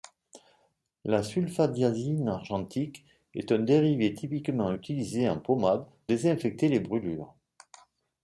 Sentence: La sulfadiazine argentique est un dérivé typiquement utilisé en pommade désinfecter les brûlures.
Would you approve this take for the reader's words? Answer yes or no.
yes